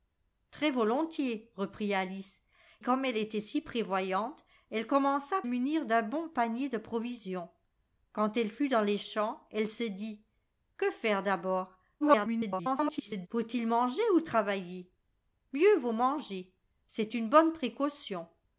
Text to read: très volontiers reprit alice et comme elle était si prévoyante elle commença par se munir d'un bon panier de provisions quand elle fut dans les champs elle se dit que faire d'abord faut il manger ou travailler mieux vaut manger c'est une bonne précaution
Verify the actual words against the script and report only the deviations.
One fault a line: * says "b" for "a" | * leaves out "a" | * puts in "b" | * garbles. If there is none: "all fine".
* leaves out "et"
* leaves out "par se"
* garbles